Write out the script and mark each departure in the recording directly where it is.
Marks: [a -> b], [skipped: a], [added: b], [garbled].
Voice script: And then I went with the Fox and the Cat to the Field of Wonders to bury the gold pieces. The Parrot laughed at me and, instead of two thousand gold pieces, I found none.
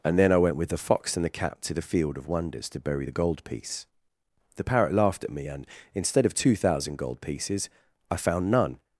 And then I went with the Fox and the Cat to the Field of Wonders to bury the gold [pieces. -> piece] The Parrot laughed at me and, instead of two thousand gold pieces, I found none.